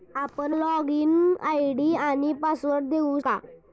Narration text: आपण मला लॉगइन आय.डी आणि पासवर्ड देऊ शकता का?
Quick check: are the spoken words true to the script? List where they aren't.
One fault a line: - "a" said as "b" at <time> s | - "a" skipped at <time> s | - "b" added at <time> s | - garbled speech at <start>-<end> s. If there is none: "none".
- "मला" skipped at 0.5 s
- "शकता" skipped at 3.2 s